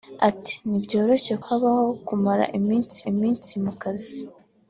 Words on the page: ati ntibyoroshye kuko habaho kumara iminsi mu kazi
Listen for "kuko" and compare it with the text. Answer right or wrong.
wrong